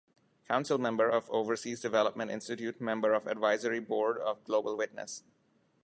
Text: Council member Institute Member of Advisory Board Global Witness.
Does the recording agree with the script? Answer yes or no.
no